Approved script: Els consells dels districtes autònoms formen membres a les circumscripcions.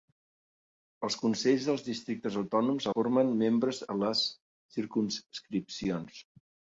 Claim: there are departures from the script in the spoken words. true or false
false